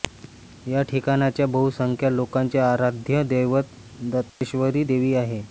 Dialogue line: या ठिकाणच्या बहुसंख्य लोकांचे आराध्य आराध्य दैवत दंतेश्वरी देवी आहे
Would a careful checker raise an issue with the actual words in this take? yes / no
yes